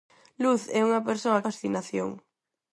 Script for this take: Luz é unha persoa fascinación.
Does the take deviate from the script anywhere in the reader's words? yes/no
no